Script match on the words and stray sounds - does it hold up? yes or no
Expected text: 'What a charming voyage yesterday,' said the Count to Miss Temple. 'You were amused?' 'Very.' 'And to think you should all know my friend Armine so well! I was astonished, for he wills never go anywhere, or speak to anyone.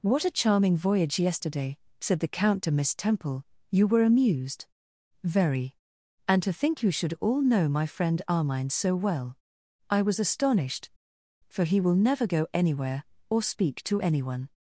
no